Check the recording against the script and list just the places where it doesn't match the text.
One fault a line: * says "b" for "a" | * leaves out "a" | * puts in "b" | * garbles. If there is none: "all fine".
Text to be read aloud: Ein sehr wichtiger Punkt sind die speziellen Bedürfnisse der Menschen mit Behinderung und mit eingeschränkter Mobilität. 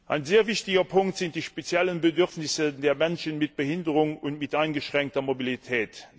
all fine